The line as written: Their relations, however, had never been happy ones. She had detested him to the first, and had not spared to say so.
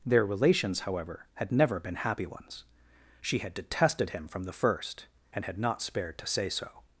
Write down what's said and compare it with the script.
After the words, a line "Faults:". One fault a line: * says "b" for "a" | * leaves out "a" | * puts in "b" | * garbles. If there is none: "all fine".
Their relations, however, had never been happy ones. She had detested him from the first, and had not spared to say so.
Faults:
* says "from" for "to"